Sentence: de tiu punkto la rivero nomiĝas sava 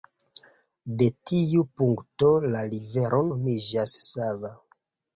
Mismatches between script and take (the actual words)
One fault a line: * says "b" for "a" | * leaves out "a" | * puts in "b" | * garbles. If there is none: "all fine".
all fine